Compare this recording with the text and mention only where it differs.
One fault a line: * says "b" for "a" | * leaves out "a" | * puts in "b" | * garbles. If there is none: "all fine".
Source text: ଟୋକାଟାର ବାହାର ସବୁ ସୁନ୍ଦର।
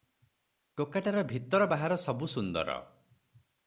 * puts in "ଭିତର"